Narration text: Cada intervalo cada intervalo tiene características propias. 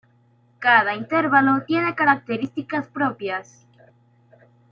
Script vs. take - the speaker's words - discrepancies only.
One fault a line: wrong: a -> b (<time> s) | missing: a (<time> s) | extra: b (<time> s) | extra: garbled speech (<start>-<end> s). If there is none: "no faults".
missing: cada intervalo (1.7 s)